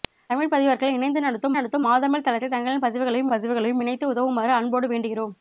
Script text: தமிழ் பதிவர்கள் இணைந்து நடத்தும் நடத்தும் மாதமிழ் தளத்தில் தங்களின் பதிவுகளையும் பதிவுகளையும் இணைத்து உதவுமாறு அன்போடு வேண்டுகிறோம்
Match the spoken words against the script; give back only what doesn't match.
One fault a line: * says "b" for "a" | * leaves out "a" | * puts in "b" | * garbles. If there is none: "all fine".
all fine